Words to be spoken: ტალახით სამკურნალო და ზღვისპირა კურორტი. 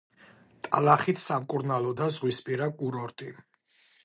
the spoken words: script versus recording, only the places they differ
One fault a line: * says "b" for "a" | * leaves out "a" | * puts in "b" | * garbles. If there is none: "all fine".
all fine